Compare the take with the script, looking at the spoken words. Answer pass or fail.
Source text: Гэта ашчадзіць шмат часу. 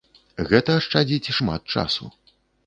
pass